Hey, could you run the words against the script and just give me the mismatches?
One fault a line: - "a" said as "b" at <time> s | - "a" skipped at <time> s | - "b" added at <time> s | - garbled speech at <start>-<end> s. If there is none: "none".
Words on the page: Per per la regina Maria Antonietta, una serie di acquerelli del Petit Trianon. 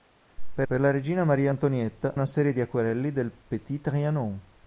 none